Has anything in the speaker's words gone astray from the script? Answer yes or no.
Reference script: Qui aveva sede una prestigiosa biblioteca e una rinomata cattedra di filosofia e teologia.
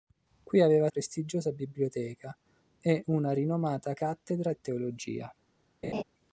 yes